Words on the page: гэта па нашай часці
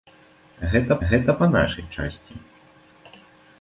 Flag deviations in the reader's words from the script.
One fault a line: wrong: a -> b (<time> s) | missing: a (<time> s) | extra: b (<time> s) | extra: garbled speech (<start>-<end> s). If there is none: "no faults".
extra: гэта (1.1 s)